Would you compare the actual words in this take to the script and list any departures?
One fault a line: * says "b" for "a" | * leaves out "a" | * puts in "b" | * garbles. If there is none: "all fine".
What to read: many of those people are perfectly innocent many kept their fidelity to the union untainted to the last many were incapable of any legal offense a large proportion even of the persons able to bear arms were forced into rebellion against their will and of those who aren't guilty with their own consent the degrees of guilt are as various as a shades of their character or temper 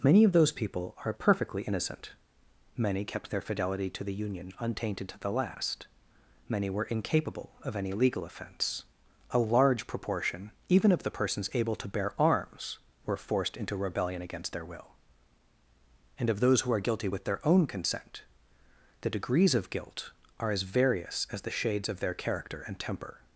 * says "are" for "aren't"
* says "the" for "a"
* says "and" for "or"